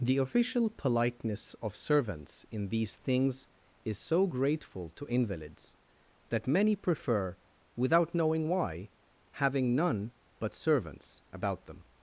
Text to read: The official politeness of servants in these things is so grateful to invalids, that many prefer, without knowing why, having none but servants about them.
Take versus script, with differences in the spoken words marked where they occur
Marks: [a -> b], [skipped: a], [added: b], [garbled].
The official politeness of servants in these things is so grateful to invalids, that many prefer, without knowing why, having none but servants about them.